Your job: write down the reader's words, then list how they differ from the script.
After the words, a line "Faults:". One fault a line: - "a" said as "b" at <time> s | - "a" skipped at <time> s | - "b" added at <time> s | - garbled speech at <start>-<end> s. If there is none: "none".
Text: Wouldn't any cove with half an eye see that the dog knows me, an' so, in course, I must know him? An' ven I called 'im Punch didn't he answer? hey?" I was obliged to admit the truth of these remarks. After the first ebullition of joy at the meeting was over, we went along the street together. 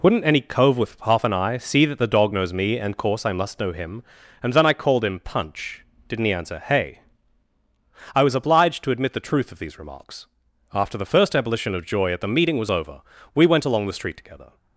Wouldn't any cove with half an eye see that the dog knows me, and course, I must know him? And then I called 'him Punch didn't he answer? hey?" I was obliged to admit the truth of these remarks. After the first ebullition of joy at the meeting was over, we went along the street together.
Faults:
- "an so in" said as "and" at 2.8 s
- "An ven" said as "And then" at 4.4 s
- "im" said as "him" at 5.0 s